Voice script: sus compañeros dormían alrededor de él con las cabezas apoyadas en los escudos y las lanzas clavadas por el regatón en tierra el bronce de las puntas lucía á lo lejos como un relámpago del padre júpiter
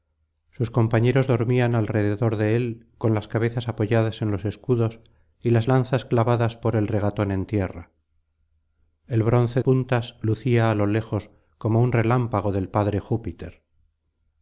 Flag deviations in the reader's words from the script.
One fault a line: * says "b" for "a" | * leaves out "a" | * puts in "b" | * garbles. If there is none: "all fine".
* leaves out "de las"